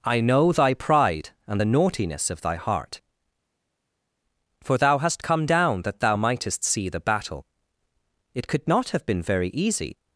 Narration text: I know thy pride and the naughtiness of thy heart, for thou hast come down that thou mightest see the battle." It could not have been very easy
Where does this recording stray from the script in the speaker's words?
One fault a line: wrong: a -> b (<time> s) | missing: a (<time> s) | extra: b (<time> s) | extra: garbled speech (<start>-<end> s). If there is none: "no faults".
no faults